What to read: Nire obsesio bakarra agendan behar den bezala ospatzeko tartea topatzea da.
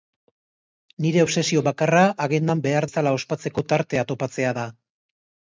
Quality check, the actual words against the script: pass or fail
fail